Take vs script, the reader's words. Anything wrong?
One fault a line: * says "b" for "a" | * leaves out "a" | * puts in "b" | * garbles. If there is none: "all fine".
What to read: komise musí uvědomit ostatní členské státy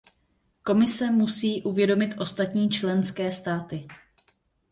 all fine